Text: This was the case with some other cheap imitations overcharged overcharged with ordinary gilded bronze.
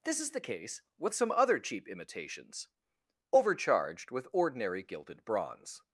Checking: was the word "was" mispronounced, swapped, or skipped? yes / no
yes